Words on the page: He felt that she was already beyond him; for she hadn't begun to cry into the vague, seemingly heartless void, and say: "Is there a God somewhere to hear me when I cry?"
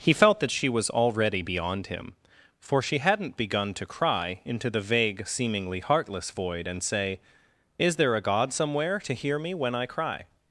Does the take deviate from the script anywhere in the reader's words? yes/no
no